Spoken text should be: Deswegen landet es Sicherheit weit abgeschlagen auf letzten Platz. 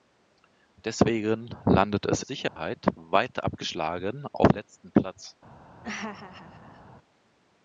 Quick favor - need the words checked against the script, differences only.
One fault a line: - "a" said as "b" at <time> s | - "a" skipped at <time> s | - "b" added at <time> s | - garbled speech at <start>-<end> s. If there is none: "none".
none